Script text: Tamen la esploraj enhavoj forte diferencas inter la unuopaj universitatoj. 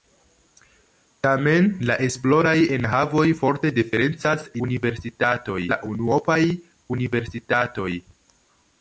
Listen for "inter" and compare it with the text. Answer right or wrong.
wrong